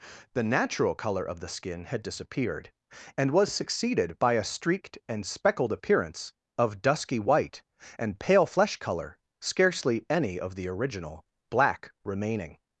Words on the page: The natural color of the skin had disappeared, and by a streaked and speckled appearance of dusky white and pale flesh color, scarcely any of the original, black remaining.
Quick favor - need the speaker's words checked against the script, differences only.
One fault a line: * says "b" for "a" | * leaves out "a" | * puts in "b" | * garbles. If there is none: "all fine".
* puts in "was succeeded"